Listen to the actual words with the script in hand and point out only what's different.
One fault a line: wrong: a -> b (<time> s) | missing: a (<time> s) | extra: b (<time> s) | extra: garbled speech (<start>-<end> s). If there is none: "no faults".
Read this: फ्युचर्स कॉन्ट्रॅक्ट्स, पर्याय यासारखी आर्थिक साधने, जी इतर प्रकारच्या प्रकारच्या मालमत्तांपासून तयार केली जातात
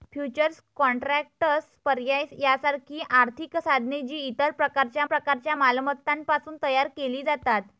no faults